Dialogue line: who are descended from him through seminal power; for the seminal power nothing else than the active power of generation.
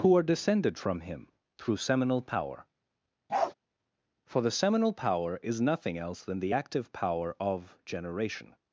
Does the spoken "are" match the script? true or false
true